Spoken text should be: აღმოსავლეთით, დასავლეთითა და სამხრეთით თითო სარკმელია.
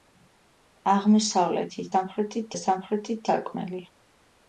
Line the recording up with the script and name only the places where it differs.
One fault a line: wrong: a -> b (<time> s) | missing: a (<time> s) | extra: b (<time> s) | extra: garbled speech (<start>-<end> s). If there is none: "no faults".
wrong: დასავლეთითა -> სამხრეთით (1.9 s)
missing: თითო (3.3 s)